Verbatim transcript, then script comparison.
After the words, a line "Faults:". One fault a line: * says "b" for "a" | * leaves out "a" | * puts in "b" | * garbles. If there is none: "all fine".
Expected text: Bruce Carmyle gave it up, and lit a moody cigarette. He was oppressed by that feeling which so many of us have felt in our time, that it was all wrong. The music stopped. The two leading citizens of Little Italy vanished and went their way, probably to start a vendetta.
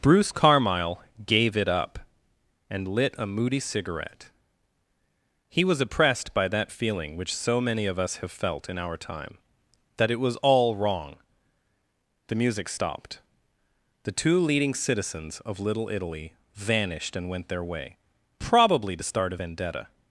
Bruce Carmyle gave it up, and lit a moody cigarette. He was oppressed by that feeling which so many of us have felt in our time, that it was all wrong. The music stopped. The two leading citizens of Little Italy vanished and went their way, probably to start a vendetta.
Faults:
all fine